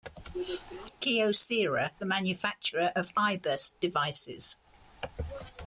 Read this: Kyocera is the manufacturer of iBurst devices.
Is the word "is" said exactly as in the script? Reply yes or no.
no